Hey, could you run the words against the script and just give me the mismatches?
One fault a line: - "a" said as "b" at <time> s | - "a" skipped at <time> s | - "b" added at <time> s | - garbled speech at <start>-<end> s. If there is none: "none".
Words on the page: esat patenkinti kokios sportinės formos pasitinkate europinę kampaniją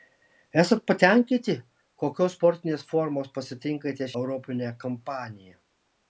none